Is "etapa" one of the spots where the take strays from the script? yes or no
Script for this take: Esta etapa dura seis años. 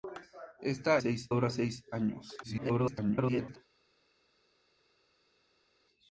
yes